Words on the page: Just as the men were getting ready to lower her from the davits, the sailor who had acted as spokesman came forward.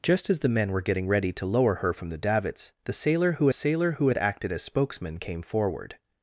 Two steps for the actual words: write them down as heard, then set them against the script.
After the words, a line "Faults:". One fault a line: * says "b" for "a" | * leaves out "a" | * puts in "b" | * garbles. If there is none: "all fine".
Just as the men were getting ready to lower her from the davits, the sailor who sailor who had acted as spokesman came forward.
Faults:
* puts in "sailor who"